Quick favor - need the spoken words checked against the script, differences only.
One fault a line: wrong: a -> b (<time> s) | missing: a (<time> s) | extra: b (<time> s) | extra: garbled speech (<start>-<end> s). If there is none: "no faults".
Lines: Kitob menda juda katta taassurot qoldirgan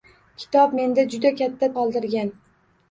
missing: taassurot (1.7 s)